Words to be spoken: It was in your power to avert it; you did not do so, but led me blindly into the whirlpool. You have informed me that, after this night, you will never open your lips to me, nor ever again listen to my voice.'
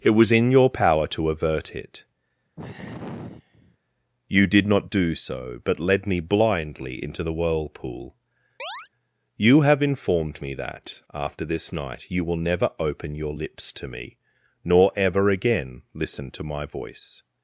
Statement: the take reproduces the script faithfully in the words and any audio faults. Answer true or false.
false